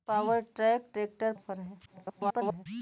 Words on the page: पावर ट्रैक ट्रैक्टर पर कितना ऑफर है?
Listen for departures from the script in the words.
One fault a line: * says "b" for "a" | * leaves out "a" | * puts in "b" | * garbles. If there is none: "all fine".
* leaves out "पर कितना"
* garbles